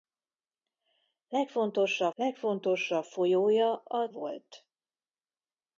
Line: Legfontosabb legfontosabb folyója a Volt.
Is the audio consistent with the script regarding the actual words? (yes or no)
yes